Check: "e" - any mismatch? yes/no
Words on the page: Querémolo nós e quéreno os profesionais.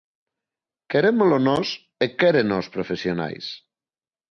no